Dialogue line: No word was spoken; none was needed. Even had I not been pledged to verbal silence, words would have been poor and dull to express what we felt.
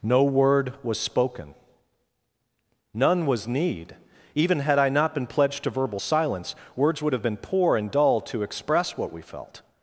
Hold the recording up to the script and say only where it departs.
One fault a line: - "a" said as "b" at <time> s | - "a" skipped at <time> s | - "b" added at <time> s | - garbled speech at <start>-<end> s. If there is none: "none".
- "needed" said as "need" at 3.5 s